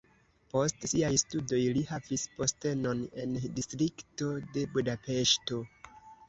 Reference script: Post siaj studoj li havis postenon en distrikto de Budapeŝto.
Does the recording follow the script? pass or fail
pass